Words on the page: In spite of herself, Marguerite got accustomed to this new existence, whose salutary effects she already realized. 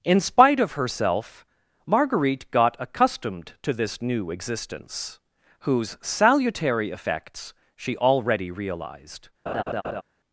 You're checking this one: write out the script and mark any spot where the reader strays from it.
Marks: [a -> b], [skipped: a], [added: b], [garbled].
In spite of herself, Marguerite got accustomed to this new existence, whose salutary effects she already realized.